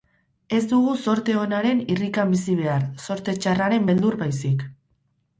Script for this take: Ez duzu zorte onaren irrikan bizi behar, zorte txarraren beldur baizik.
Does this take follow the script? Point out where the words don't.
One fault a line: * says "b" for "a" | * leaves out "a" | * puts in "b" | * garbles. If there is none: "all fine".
* says "dugu" for "duzu"